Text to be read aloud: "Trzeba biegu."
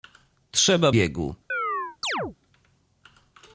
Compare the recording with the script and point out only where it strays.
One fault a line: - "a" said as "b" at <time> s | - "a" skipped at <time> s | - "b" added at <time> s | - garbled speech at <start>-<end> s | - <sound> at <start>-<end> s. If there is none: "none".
- chirp at 1.5-2.4 s